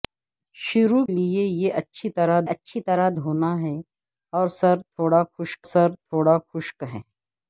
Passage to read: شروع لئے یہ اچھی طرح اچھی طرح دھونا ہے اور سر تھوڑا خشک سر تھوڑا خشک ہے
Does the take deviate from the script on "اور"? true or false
false